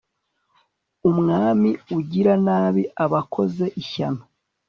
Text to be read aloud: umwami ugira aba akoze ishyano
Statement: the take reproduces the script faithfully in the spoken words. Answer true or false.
false